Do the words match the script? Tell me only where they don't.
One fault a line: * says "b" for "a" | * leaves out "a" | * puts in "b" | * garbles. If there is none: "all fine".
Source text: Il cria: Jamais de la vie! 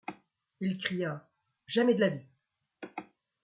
all fine